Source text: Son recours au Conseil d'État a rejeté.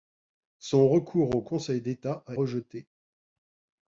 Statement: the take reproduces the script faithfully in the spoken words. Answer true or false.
true